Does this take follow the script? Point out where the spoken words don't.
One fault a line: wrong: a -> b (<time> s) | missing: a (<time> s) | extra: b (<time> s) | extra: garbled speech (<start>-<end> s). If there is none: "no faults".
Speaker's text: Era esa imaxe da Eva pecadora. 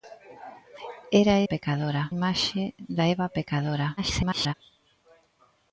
wrong: esa -> pecadora (1.5 s)
extra: garbled speech (4.0-4.5 s)